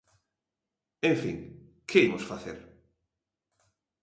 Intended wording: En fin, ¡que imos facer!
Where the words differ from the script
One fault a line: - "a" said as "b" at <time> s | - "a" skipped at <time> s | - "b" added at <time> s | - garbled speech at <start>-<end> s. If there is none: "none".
none